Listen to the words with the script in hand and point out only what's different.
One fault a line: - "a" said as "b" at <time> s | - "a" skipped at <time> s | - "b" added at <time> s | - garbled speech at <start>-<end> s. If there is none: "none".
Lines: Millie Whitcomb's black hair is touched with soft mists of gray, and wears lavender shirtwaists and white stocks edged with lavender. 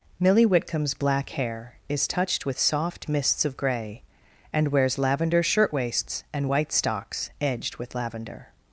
none